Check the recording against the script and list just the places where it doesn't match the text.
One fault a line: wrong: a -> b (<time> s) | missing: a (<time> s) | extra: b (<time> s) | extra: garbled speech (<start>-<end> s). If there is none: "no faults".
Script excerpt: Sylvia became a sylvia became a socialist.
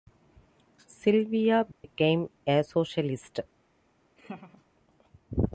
missing: sylvia became a (2.6 s)